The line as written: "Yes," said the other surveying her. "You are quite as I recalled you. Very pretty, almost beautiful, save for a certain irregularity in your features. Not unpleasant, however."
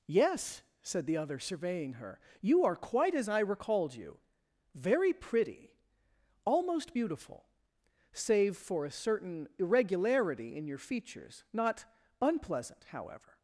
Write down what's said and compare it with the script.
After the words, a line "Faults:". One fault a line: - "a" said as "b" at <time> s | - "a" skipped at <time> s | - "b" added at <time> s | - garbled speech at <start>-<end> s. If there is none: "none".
"Yes," said the other surveying her. "You are quite as I recalled you. Very pretty, almost beautiful, save for a certain irregularity in your features. Not unpleasant, however."
Faults:
none